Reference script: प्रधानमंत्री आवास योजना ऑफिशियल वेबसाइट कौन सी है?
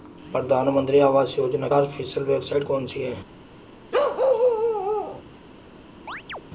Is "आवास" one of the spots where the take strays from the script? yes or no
no